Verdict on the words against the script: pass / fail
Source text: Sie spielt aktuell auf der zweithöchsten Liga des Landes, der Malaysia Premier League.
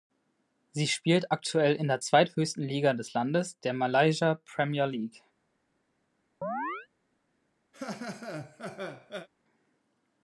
fail